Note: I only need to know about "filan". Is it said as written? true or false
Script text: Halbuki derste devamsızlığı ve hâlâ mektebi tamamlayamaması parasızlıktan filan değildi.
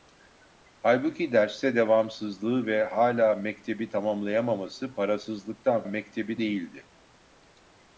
false